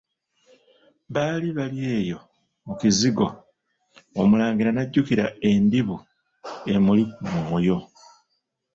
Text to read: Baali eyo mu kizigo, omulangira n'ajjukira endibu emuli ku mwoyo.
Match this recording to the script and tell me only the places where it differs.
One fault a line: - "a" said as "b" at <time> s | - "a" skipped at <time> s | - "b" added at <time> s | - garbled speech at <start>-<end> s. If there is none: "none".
- "bali" added at 1.6 s